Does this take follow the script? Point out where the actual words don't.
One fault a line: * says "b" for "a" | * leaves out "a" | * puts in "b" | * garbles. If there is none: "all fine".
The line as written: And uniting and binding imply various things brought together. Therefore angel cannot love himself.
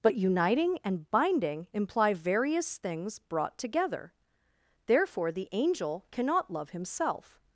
* says "But" for "And"
* puts in "the"